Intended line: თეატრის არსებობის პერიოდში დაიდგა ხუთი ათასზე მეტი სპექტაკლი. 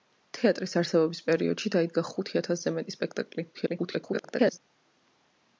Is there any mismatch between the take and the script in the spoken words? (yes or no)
yes